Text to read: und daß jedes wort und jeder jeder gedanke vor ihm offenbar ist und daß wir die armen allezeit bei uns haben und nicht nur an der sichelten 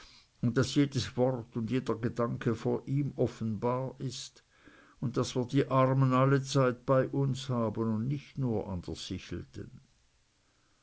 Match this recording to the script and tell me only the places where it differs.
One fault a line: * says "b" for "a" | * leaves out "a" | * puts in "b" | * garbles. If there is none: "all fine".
* leaves out "jeder"